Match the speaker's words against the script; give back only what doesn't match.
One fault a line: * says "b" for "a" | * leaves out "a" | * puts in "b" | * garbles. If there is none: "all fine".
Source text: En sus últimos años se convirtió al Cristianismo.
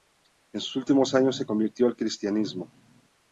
all fine